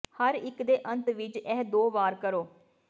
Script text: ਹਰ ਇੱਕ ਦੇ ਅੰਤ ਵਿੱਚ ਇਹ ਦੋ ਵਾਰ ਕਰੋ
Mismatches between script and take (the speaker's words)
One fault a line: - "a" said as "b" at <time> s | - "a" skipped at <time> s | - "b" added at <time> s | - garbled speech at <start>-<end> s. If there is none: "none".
none